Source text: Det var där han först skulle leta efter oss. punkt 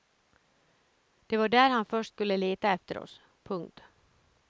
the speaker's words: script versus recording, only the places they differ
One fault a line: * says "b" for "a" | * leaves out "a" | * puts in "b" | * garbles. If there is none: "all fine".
all fine